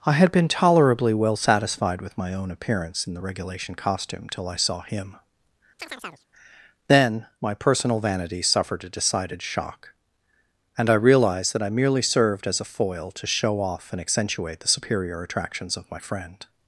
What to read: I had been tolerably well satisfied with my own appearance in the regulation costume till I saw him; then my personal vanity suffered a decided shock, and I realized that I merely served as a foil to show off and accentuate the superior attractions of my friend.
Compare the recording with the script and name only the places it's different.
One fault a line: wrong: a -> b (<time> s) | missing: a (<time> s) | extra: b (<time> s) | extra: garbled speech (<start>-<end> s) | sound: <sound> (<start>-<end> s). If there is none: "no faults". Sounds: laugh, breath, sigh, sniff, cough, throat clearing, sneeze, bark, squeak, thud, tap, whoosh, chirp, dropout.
sound: chirp (5.8-6.3 s)